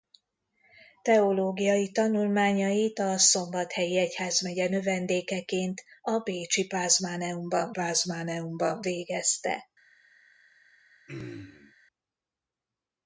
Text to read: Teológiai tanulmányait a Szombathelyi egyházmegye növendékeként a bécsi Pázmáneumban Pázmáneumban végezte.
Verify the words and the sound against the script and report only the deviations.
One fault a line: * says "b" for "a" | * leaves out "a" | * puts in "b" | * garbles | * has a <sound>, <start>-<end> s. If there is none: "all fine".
* has a throat clearing, 11.1-11.7 s